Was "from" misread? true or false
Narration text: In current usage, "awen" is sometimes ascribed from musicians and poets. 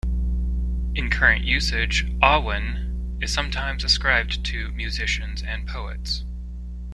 true